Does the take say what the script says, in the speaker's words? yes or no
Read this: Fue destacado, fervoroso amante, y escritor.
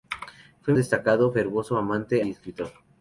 yes